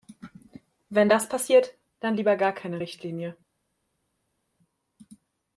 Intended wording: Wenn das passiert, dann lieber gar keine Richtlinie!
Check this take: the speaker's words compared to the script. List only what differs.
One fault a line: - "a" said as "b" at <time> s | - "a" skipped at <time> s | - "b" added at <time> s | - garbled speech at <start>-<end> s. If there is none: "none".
none